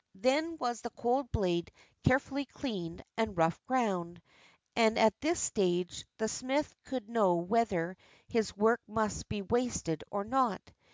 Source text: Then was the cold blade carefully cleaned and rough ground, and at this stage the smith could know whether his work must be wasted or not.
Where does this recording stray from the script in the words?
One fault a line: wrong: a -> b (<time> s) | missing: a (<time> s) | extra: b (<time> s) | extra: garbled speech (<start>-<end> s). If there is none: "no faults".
no faults